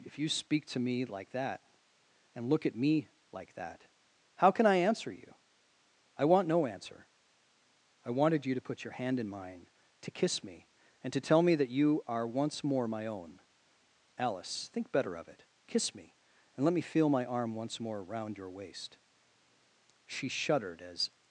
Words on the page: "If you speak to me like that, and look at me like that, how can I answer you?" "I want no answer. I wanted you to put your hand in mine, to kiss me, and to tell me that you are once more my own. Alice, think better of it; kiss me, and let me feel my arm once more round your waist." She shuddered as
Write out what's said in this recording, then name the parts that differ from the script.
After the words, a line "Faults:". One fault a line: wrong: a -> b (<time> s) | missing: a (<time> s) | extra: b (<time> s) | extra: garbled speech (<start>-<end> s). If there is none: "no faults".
"If you speak to me like that, and look at me like that, how can I answer you?" "I want no answer. I wanted you to put your hand in mine, to kiss me, and to tell me that you are once more my own. Alice, think better of it; kiss me, and let me feel my arm once more round your waist." She shuddered as
Faults:
no faults